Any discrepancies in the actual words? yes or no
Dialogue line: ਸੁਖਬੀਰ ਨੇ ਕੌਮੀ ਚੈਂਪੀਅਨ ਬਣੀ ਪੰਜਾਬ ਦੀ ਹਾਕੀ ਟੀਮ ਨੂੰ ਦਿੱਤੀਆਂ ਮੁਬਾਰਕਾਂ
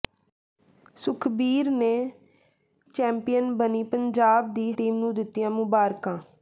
yes